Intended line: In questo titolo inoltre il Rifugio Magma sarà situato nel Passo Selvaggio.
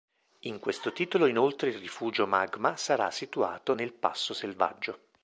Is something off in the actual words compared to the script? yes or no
no